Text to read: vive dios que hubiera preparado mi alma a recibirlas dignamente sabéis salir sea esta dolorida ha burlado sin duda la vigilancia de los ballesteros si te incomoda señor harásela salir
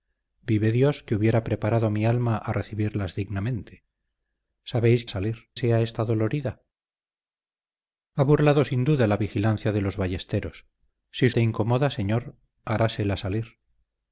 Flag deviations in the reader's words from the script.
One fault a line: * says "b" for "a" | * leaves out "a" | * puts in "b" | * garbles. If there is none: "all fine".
all fine